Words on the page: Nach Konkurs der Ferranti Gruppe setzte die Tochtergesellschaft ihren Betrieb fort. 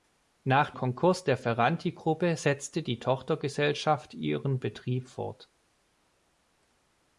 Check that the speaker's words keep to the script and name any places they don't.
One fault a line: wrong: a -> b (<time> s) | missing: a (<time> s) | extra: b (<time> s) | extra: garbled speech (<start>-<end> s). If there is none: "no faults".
no faults